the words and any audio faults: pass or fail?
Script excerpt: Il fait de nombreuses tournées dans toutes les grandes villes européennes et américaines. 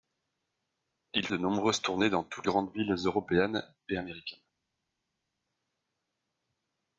fail